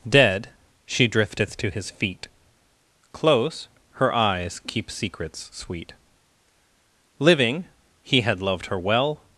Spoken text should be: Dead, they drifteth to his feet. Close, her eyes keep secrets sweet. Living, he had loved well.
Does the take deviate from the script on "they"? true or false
true